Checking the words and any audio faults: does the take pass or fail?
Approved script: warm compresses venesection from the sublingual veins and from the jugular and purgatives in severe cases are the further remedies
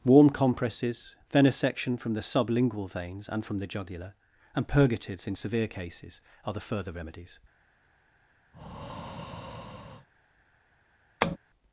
fail